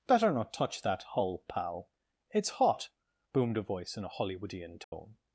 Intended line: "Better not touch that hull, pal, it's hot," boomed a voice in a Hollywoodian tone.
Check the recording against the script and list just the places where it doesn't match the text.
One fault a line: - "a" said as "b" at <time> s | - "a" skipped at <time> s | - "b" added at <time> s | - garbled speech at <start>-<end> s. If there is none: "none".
none